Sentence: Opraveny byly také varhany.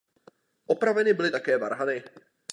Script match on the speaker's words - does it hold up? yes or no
yes